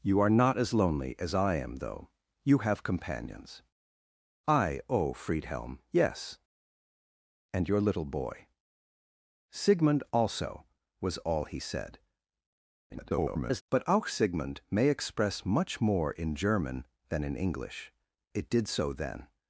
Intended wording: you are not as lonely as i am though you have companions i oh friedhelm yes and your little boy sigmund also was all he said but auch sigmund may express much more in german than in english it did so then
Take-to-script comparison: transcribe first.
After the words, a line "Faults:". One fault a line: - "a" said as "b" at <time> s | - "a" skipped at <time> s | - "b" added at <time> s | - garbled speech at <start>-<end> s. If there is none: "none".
you are not as lonely as i am though you have companions i oh friedhelm yes and your little boy sigmund also was all he said [garbled] but auch sigmund may express much more in german than in english it did so then
Faults:
- garbled speech at 12.9-13.6 s